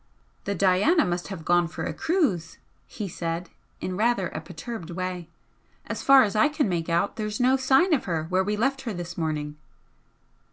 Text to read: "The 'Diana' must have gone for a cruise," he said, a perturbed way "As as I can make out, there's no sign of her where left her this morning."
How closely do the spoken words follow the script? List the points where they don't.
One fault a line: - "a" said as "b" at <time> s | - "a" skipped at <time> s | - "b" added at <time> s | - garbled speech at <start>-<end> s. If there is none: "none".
- "in rather" added at 3.8 s
- "far" added at 6.0 s
- "we" added at 8.4 s